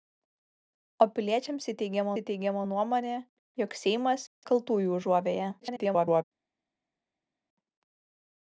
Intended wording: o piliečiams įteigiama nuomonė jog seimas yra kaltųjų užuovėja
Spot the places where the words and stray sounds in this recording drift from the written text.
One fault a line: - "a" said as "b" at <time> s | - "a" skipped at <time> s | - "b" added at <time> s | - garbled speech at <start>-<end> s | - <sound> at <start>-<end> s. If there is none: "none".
- "įteigiama" added at 2.2 s
- "yra" skipped at 4.3 s
- garbled speech at 5.6-6.2 s